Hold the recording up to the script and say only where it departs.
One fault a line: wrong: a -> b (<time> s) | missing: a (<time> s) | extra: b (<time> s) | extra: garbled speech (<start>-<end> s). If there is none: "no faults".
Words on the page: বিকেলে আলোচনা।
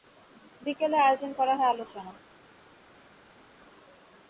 extra: আয়োজন করা হয় (1.0 s)